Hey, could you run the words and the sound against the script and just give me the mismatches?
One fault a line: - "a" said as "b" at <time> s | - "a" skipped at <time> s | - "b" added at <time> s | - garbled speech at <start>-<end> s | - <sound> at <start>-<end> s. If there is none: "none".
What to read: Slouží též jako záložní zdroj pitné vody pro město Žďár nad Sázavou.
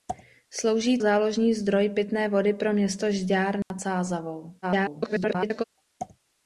- "též jako" skipped at 1.0 s
- dropout at 3.6-3.7 s
- garbled speech at 4.6-5.6 s